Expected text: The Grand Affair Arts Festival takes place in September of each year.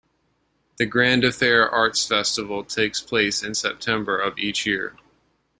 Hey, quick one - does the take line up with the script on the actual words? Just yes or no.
yes